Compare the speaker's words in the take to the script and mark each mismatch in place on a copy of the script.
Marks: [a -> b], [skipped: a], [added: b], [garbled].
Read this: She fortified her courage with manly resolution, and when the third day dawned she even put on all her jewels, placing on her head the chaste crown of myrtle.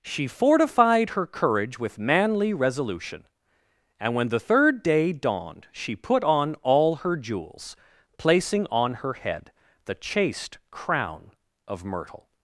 She fortified her courage with manly resolution, and when the third day dawned she [skipped: even] put on all her jewels, placing on her head the chaste crown of myrtle.